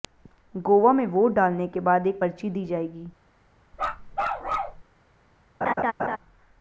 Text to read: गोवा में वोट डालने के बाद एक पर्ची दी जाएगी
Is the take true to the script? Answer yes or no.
yes